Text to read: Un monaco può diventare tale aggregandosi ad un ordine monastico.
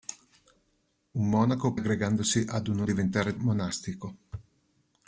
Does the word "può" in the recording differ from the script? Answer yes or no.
yes